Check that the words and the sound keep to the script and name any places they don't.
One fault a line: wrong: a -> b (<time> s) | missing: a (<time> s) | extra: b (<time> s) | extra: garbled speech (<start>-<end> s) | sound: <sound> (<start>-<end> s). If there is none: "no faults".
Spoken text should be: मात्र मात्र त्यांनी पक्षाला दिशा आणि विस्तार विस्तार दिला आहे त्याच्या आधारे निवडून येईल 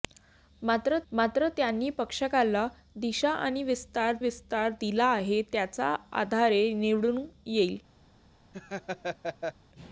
sound: laugh (8.5-9.5 s)